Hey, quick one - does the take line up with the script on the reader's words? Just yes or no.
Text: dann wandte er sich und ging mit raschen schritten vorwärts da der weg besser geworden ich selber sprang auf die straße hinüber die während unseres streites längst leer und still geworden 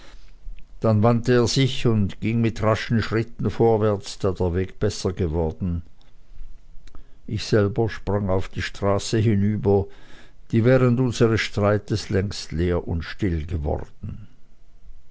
yes